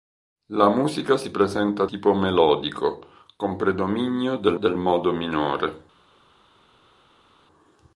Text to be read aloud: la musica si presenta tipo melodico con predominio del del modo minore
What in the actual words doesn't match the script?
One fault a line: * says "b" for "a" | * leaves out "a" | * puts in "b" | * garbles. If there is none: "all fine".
all fine